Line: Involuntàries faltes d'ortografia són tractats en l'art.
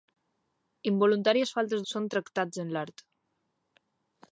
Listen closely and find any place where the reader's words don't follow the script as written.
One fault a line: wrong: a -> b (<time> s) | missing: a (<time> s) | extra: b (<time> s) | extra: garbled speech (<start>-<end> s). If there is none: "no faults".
missing: d'ortografia (1.9 s)